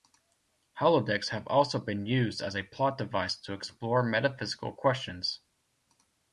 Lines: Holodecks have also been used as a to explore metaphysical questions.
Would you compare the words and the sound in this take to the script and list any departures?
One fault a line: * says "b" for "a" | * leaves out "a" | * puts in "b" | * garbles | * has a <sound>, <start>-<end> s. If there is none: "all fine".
* puts in "plot device"